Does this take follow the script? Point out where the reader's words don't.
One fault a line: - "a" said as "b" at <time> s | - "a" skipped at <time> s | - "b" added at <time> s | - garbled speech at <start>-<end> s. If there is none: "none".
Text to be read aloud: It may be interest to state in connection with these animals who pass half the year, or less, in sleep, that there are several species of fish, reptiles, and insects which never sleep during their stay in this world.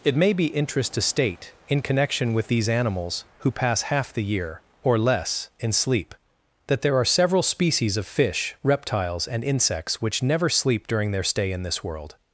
none